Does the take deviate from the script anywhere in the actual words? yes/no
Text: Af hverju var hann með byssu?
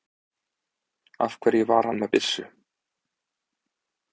no